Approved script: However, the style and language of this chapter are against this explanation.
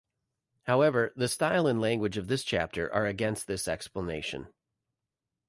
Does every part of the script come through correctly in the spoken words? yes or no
yes